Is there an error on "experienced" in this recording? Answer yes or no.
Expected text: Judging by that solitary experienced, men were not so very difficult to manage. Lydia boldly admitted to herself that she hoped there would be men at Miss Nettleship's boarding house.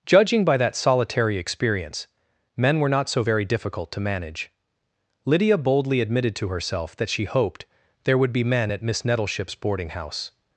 yes